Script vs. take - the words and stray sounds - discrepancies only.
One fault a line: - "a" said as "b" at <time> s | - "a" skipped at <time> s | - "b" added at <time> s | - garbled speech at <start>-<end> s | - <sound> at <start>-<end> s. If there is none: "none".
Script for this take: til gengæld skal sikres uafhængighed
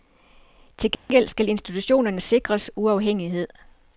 - dropout at 0.9-1.1 s
- "institutionerne" added at 1.5 s